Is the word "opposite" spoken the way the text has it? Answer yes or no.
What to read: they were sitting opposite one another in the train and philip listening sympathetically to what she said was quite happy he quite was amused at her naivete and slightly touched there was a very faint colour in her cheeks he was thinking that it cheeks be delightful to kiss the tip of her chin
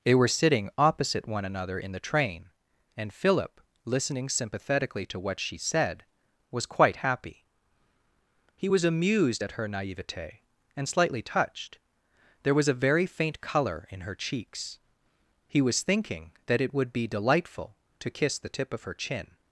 yes